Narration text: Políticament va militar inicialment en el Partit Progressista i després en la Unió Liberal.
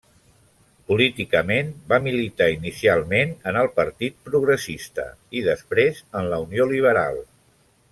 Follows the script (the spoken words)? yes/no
yes